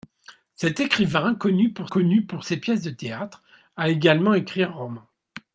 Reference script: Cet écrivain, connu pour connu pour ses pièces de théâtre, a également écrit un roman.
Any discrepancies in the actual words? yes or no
no